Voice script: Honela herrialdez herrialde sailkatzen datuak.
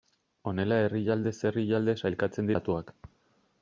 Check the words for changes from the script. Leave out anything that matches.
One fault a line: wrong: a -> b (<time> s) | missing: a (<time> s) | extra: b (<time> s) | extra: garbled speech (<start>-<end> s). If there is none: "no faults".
no faults